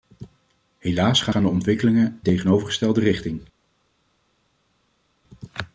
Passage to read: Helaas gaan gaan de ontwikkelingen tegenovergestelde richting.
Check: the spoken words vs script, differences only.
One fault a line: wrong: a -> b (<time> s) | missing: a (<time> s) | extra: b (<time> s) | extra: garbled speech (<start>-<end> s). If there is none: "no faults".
no faults